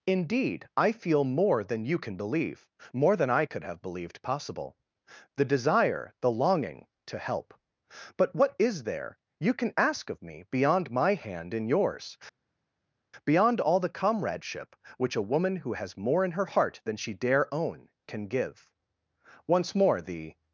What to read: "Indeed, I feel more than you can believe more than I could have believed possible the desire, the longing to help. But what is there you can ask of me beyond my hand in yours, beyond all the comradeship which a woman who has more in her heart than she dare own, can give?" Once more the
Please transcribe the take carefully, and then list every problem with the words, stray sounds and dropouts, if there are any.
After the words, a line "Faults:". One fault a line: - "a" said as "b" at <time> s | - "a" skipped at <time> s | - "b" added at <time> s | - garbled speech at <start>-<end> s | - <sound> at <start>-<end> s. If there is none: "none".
"Indeed, I feel more than you can believe more than I could have believed possible the desire, the longing to help. But what is there you can ask of me beyond my hand in yours, beyond all the comradeship which a woman who has more in her heart than she dare own, can give?" Once more the
Faults:
none